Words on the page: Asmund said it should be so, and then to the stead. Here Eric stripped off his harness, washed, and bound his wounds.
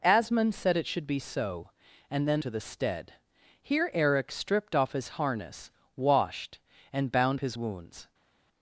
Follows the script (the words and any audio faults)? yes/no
yes